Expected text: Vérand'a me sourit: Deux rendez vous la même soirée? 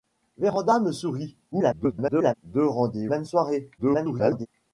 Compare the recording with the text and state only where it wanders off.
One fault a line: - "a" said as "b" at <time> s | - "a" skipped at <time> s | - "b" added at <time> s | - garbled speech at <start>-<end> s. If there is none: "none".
- garbled speech at 1.5-2.3 s
- "vous la" skipped at 3.1 s
- garbled speech at 3.8-4.5 s